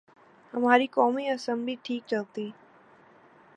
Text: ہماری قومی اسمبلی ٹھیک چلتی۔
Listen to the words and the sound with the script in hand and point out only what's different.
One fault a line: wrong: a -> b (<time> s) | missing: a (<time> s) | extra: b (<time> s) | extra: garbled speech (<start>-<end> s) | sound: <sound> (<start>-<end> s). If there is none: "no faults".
no faults